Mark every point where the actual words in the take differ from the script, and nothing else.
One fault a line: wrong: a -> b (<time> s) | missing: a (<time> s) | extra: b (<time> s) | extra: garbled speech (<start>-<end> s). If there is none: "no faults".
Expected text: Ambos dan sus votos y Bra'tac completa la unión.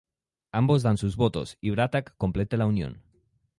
no faults